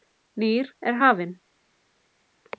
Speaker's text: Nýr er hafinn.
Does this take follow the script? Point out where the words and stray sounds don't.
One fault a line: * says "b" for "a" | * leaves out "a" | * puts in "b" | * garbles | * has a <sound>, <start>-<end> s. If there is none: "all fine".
all fine